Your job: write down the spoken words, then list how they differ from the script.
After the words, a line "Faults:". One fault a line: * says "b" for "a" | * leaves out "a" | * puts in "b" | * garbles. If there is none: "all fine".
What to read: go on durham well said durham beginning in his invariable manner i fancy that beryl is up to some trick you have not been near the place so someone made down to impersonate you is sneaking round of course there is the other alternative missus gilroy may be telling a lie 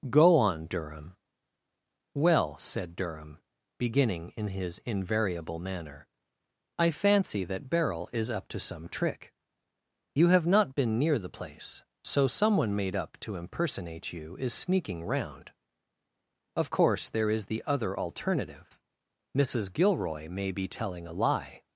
go on durham well said durham beginning in his invariable manner i fancy that beryl is up to some trick you have not been near the place so someone made up to impersonate you is sneaking round of course there is the other alternative missus gilroy may be telling a lie
Faults:
* says "up" for "down"